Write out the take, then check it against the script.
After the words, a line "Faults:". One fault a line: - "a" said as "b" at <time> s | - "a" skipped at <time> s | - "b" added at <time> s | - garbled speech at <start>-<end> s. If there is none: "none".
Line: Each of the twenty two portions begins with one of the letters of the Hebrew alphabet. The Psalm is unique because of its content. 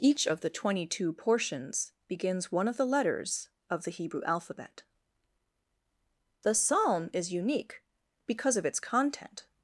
Each of the twenty two portions begins one of the letters of the Hebrew alphabet. The Psalm is unique because of its content.
Faults:
- "with" skipped at 2.5 s